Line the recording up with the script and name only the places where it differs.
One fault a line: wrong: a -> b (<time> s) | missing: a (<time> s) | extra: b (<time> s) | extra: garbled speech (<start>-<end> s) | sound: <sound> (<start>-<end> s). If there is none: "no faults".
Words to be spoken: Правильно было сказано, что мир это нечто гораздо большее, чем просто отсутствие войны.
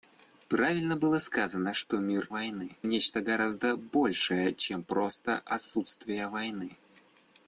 wrong: это -> войны (2.3 s)